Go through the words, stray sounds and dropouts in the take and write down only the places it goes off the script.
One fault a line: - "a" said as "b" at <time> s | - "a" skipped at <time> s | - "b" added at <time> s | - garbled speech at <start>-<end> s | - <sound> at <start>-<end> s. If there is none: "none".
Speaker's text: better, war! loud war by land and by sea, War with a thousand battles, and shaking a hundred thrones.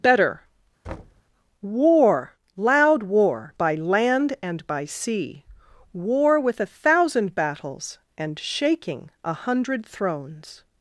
- thud at 0.8-1.2 s